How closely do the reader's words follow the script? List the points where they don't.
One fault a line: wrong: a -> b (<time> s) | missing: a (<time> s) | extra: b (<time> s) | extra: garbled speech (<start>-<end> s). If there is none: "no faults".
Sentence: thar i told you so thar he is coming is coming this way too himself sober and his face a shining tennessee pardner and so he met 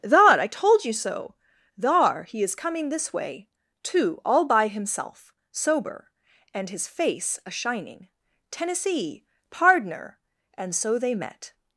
missing: is coming (2.9 s)
extra: all by (4.2 s)
wrong: he -> they (11.0 s)